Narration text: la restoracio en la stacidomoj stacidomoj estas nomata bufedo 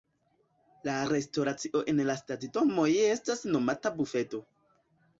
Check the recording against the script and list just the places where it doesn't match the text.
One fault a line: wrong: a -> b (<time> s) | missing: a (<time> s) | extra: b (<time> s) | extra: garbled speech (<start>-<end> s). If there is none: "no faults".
missing: stacidomoj (2.9 s)